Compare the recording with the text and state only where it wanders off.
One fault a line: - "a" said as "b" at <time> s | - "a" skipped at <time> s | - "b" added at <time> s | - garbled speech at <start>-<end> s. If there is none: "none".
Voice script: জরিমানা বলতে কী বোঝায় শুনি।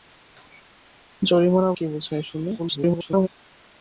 - "বলতে" skipped at 1.7 s
- garbled speech at 2.6-3.3 s